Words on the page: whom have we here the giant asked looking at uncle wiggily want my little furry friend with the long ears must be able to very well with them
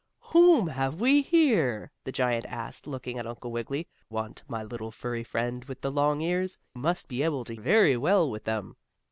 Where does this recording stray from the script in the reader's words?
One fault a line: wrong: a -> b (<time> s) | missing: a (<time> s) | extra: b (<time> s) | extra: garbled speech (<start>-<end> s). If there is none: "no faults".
no faults